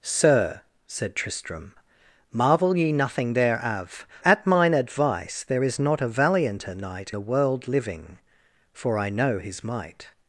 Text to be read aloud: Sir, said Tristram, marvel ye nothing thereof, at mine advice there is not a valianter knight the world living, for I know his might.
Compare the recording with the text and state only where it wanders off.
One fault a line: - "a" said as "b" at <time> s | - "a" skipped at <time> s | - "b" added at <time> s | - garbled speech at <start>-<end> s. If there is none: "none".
none